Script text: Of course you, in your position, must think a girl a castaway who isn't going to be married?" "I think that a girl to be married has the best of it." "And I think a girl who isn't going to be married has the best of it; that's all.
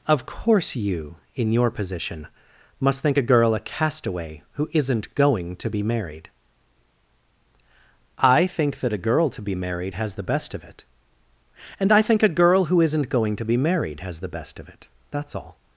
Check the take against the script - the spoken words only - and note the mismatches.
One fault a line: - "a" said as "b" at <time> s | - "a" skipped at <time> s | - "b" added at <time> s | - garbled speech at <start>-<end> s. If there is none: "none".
none